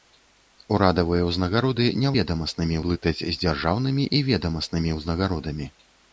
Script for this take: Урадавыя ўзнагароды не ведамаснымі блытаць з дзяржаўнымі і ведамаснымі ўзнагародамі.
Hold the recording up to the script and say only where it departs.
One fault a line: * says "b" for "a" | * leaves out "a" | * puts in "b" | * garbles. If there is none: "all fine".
all fine